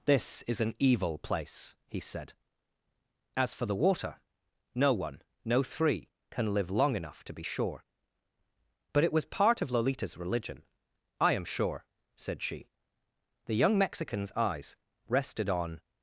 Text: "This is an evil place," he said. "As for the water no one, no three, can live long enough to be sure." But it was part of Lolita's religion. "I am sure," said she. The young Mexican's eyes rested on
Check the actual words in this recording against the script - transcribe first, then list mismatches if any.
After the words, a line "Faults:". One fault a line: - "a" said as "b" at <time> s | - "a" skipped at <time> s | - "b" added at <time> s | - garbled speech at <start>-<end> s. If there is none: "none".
"This is an evil place," he said. "As for the water no one, no three, can live long enough to be sure." But it was part of Lolita's religion. "I am sure," said she. The young Mexican's eyes rested on
Faults:
none